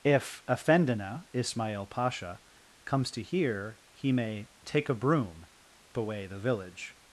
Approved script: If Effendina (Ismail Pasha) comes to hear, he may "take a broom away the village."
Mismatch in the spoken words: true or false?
false